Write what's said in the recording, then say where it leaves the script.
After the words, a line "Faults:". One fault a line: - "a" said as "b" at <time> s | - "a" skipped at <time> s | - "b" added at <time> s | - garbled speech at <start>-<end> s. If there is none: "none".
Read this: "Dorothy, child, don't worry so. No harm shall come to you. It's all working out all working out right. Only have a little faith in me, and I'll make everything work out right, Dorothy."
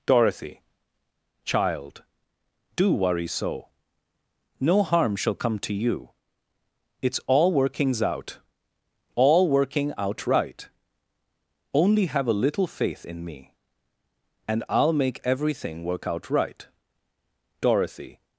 "Dorothy, child, do worry so. No harm shall come to you. It's all workings out all working out right. Only have a little faith in me, and I'll make everything work out right, Dorothy."
Faults:
- "don't" said as "do" at 2.8 s
- "working" said as "workings" at 7.5 s